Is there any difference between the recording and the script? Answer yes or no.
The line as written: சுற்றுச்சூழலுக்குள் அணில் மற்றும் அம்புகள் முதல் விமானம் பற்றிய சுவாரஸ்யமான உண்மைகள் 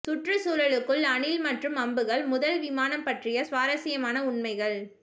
no